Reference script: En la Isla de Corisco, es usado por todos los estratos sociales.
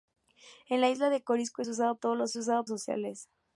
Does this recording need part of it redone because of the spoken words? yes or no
yes